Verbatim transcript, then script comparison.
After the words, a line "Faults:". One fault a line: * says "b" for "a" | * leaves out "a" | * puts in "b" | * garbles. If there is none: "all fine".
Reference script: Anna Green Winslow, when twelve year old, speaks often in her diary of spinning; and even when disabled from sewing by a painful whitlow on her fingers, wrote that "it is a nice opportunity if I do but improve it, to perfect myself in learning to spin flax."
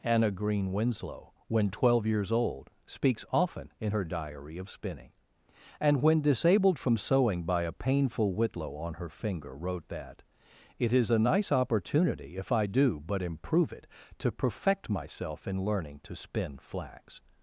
Anna Green Winslow, when twelve years old, speaks often in her diary of spinning; and when disabled from sewing by a painful whitlow on her finger, wrote that "it is a nice opportunity if I do but improve it, to perfect myself in learning to spin flax."
Faults:
* says "years" for "year"
* leaves out "even"
* says "finger" for "fingers"